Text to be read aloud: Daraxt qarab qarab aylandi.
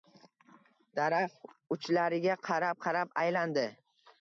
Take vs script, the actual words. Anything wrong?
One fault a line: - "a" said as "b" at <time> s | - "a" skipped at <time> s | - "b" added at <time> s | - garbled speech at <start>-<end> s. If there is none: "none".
- "uchlariga" added at 1.8 s